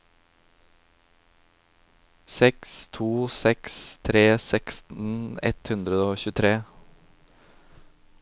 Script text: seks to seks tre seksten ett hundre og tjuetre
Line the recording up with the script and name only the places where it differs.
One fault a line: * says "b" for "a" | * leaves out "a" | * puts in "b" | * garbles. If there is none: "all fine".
all fine